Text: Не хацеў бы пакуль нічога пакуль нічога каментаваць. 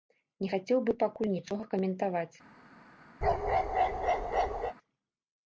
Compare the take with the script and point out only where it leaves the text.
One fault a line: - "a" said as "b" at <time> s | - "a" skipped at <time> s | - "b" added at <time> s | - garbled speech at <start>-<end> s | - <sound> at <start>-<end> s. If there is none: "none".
- "пакуль нічога" skipped at 1.6 s
- bark at 3.2-4.7 s